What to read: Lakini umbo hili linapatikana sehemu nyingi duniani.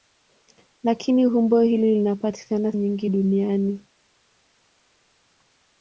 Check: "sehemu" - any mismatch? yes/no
yes